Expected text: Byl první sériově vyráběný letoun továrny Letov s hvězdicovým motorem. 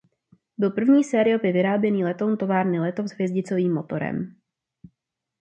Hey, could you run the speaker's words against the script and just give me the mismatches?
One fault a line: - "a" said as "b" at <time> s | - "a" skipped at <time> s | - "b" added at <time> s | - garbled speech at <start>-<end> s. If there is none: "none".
none